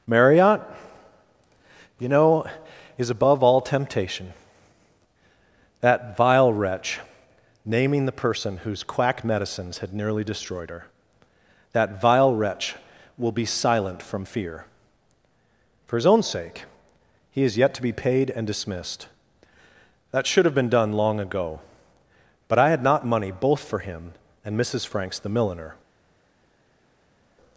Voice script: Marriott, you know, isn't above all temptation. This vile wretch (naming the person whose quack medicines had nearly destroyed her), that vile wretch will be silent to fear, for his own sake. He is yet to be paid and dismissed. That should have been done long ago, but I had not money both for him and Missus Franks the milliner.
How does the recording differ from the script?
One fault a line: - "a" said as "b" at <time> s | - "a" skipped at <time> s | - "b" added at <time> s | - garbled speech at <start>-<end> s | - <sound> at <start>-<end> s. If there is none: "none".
- "isn't" said as "is" at 3.0 s
- "This" said as "That" at 5.8 s
- "to" said as "from" at 14.0 s